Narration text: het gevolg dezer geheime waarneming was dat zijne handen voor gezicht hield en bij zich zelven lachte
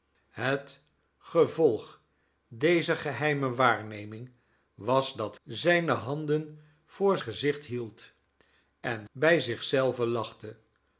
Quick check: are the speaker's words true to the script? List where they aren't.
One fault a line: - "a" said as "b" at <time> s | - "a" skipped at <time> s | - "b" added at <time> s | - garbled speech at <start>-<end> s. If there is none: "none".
none